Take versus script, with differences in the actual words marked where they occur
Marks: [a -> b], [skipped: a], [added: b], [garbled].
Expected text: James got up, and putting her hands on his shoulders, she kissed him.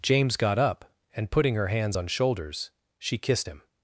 James got up, and putting her hands on [skipped: his] shoulders, she kissed him.